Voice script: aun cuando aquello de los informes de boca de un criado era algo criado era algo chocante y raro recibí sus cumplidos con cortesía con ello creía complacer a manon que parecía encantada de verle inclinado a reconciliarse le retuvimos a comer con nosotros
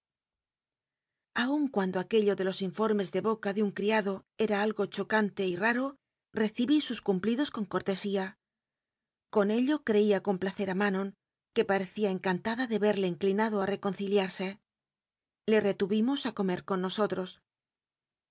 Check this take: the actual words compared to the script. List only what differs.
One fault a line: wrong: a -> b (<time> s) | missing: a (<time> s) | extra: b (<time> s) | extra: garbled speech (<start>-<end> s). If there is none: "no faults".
missing: criado era algo (4.8 s)